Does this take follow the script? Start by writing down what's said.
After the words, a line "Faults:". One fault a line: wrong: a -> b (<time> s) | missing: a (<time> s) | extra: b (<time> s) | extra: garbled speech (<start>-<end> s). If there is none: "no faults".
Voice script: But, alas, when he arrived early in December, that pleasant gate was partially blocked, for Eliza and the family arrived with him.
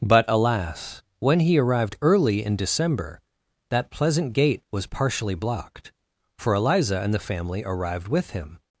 But, alas, when he arrived early in December, that pleasant gate was partially blocked, for Eliza and the family arrived with him.
Faults:
no faults